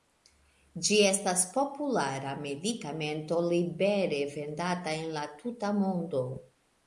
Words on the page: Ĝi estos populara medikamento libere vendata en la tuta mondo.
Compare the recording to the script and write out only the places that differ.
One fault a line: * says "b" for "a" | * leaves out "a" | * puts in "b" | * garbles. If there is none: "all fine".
* says "estas" for "estos"